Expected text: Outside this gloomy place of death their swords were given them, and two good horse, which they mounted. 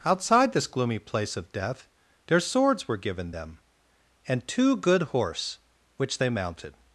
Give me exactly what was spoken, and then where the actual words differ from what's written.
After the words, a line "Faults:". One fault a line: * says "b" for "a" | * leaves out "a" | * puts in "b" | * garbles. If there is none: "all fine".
Outside this gloomy place of death their swords were given them, and two good horse, which they mounted.
Faults:
all fine